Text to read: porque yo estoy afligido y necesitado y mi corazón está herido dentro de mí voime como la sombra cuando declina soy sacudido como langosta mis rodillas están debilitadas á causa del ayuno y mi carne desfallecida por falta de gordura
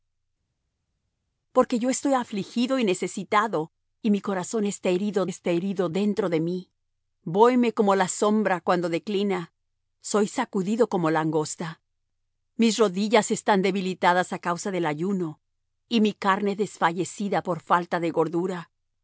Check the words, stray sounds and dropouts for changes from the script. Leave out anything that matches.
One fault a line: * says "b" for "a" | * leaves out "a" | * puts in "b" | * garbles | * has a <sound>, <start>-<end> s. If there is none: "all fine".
* puts in "está herido"